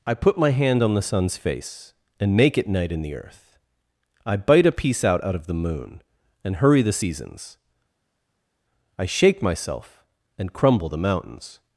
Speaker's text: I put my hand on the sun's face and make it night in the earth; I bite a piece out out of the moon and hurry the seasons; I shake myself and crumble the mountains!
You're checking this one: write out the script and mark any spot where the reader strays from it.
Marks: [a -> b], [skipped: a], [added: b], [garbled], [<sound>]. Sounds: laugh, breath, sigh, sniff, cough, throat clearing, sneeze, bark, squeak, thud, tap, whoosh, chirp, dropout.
I put my hand on the sun's face and make it night in the earth; I bite a piece out out of the moon and hurry the seasons; I shake myself and crumble the mountains!